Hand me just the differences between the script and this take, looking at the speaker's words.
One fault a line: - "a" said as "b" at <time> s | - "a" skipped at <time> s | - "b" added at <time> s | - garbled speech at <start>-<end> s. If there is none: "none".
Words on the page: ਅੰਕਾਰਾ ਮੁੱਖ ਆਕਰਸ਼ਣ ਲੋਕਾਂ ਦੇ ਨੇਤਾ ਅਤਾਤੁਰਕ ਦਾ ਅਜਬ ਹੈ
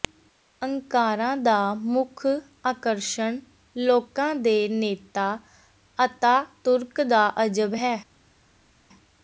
- "ਦਾ" added at 1.4 s